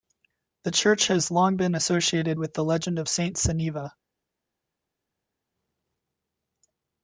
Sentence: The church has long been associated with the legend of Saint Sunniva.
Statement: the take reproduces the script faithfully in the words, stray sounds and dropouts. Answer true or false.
true